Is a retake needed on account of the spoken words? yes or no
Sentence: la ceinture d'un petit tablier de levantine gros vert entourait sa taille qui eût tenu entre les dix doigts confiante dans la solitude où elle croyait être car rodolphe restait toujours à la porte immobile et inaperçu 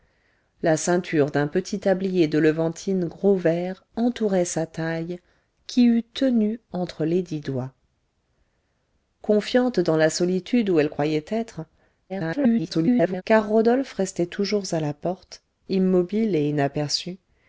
yes